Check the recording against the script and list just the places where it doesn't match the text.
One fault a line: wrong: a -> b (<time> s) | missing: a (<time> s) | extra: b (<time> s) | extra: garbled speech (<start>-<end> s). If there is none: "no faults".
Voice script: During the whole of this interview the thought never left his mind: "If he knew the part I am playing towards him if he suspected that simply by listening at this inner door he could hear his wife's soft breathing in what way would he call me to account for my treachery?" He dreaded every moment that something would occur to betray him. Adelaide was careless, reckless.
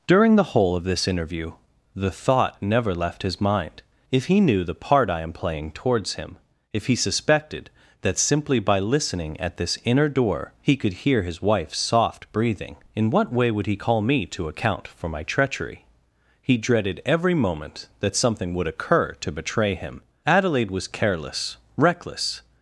no faults